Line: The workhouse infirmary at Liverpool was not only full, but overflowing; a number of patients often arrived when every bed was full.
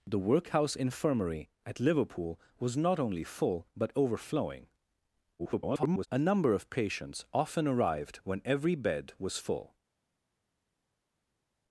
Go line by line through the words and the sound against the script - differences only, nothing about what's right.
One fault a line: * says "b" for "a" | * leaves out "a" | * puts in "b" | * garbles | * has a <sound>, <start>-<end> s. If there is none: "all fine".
* garbles